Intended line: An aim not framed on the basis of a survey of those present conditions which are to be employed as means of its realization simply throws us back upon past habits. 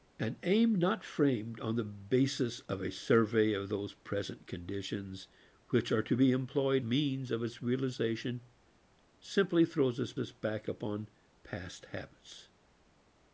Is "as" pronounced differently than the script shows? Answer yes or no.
yes